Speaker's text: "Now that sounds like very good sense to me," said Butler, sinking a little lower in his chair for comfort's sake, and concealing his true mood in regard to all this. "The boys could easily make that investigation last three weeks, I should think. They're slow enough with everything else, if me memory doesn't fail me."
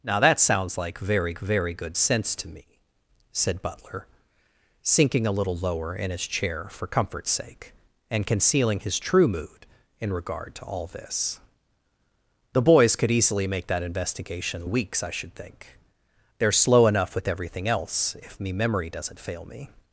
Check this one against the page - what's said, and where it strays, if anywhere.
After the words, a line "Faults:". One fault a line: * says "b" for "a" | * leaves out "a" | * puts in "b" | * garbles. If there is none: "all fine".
"Now that sounds like very very good sense to me," said Butler, sinking a little lower in his chair for comfort's sake, and concealing his true mood in regard to all this. "The boys could easily make that investigation weeks, I should think. They're slow enough with everything else, if me memory doesn't fail me."
Faults:
* puts in "very"
* leaves out "last three"